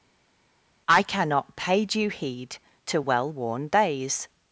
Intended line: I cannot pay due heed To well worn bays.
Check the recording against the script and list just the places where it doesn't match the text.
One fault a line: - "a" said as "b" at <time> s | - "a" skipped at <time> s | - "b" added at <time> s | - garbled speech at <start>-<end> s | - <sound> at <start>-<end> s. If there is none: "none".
- "bays" said as "days" at 3.7 s